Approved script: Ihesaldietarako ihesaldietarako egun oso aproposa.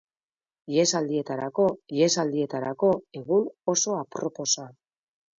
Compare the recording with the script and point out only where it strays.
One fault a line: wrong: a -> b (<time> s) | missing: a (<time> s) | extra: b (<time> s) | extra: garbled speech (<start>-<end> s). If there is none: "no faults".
no faults